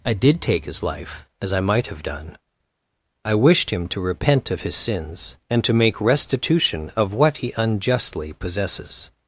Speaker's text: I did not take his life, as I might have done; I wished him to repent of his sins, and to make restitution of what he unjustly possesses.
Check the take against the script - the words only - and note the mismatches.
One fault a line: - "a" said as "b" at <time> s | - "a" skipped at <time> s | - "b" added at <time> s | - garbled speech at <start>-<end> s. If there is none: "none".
- "not" skipped at 0.4 s